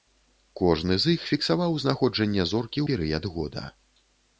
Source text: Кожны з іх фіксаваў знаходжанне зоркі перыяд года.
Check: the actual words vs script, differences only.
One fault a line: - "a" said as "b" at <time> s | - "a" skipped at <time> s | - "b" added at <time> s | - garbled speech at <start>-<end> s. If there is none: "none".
none